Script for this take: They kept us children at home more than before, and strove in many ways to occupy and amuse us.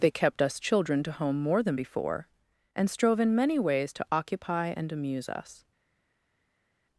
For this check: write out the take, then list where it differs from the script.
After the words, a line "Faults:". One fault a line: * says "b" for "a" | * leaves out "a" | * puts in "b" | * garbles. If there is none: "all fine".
They kept us children to home more than before, and strove in many ways to occupy and amuse us.
Faults:
* says "to" for "at"